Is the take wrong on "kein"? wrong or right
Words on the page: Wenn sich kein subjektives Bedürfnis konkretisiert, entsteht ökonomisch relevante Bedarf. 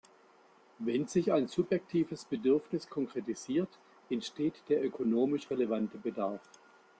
wrong